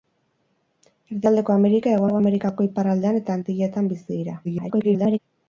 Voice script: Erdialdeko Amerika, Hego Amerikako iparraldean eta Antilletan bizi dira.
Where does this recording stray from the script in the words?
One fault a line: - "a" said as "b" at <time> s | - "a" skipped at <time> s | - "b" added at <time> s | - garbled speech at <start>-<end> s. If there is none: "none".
- "Hego" added at 2.1 s
- garbled speech at 4.4-5.2 s